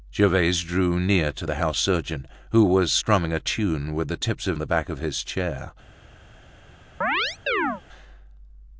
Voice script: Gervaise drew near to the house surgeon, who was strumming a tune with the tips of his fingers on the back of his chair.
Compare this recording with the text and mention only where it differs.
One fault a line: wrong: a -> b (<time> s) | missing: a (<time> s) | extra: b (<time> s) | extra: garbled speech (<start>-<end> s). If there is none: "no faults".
missing: his fingers on (4.6 s)